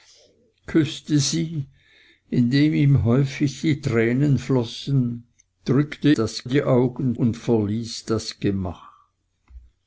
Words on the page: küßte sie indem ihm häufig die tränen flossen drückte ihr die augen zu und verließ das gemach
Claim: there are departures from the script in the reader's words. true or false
true